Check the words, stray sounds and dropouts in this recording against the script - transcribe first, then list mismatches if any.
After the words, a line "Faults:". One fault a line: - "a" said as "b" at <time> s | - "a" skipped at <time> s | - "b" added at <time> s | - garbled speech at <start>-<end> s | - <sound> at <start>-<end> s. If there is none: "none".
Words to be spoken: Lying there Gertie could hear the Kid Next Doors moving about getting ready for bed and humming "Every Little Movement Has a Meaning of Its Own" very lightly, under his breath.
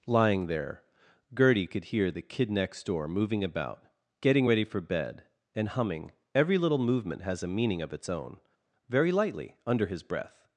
Lying there Gertie could hear the Kid Next Door moving about getting ready for bed and humming "Every Little Movement Has a Meaning of Its Own" very lightly, under his breath.
Faults:
- "Doors" said as "Door" at 2.9 s